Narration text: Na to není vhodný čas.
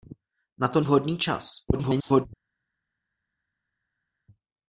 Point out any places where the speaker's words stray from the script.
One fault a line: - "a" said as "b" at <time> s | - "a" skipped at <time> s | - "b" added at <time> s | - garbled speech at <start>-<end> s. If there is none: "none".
- "není" skipped at 0.8 s
- garbled speech at 1.7-2.3 s